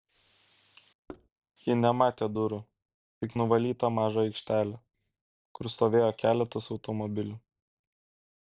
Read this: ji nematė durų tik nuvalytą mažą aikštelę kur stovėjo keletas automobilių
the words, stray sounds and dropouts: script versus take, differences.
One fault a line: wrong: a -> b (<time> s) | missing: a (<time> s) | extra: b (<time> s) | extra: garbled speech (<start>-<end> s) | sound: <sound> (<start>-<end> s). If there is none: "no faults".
sound: thud (1.1-1.3 s)